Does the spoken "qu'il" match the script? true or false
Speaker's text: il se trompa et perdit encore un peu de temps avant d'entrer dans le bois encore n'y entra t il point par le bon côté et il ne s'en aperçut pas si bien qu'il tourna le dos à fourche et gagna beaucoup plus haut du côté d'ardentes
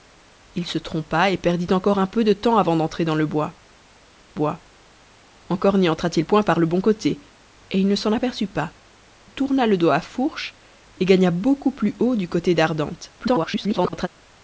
false